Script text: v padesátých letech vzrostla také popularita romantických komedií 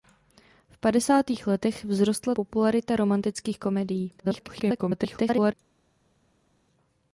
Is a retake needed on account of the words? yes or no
yes